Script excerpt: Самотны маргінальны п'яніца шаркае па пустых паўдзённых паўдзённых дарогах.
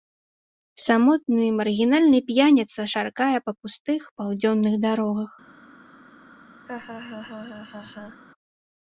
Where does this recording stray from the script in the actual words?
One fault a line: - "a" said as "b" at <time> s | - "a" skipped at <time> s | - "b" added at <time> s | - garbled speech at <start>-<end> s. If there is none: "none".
- "паўдзённых" skipped at 4.7 s